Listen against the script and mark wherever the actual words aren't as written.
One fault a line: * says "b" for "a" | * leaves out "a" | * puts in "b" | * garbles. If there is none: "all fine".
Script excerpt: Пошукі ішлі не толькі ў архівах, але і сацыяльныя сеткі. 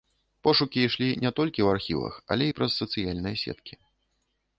* puts in "праз"